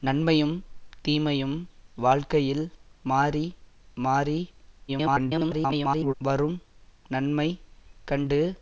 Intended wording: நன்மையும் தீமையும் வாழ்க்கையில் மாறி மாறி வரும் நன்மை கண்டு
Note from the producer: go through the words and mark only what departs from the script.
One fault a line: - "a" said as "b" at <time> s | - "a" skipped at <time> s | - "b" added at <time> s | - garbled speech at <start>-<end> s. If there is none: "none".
- garbled speech at 4.9-6.1 s